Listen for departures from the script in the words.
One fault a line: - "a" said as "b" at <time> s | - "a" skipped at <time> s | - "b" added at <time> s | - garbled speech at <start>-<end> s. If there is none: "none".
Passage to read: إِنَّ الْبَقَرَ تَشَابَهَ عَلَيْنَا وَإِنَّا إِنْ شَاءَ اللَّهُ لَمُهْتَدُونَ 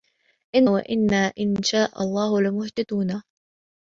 - "الْبَقَرَ تَشَابَهَ عَلَيْنَا" skipped at 0.7 s